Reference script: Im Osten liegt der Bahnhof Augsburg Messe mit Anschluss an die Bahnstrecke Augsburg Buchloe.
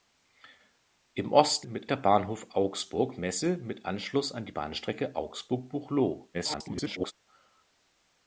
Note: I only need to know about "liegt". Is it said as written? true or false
false